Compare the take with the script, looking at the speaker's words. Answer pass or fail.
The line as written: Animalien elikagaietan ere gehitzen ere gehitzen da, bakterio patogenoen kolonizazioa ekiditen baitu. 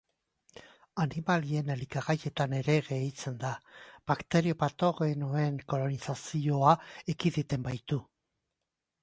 fail